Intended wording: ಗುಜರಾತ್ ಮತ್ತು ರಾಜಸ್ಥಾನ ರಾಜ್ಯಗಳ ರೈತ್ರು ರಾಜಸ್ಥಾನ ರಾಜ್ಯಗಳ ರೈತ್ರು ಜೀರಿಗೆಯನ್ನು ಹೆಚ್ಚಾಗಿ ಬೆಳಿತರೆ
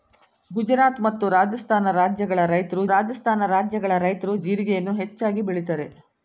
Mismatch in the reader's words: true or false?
false